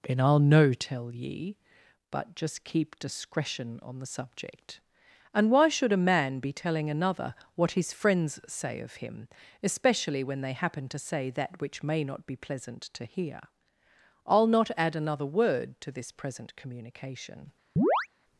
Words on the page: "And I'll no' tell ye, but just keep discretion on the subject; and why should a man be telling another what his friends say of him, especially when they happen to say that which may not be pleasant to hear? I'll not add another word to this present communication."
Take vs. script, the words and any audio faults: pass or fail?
fail